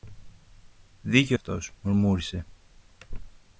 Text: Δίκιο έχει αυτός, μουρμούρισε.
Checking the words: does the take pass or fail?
fail